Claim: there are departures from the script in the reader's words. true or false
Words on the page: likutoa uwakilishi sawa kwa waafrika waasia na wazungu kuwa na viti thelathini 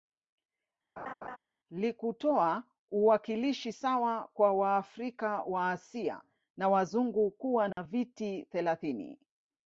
false